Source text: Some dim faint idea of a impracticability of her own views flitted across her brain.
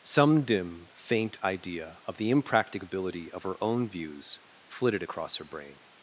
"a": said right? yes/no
no